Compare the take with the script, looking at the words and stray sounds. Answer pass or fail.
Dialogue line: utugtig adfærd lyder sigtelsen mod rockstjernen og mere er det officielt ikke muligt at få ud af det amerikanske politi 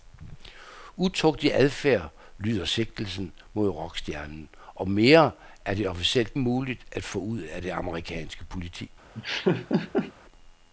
fail